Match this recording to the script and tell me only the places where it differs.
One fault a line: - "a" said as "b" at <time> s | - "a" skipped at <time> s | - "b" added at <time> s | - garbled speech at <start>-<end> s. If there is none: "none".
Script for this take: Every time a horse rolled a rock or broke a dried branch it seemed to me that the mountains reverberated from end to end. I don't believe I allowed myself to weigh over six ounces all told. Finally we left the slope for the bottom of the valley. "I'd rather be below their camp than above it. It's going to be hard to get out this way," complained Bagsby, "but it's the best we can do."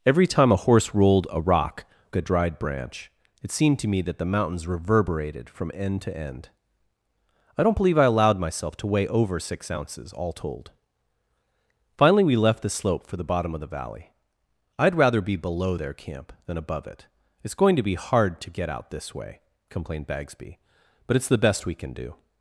- "or broke" skipped at 1.9 s